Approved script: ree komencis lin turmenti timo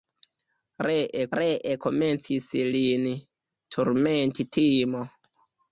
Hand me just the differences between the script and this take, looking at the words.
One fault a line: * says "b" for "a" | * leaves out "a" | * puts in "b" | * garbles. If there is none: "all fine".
* puts in "ree"